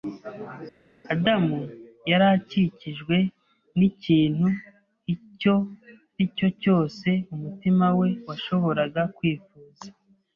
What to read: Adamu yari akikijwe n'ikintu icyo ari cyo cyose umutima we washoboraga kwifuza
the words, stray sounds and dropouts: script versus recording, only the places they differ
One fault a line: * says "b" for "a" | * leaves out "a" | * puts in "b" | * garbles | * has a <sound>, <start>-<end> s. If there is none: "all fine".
all fine